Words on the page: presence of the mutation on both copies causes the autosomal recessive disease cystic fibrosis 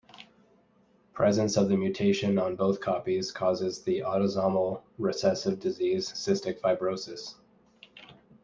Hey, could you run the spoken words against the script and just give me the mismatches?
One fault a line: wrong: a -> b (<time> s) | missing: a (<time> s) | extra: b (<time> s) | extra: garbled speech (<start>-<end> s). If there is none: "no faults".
no faults